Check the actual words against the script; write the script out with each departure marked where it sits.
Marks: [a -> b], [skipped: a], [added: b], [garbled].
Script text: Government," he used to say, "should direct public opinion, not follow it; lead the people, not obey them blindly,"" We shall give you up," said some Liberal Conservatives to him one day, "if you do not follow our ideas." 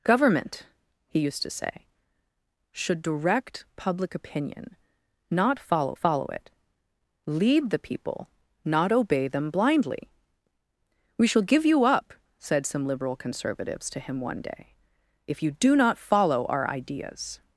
Government," he used to say, "should direct public opinion, not follow [added: follow] it; lead the people, not obey them blindly,"" We shall give you up," said some Liberal Conservatives to him one day, "if you do not follow our ideas."